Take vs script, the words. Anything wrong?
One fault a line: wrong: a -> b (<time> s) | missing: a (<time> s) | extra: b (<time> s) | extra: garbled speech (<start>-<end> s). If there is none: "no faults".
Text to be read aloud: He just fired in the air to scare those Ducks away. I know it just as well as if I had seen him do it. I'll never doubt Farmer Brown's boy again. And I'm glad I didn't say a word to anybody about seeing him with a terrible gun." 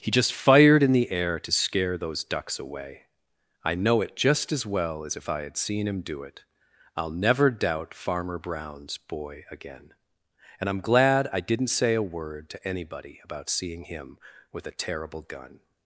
no faults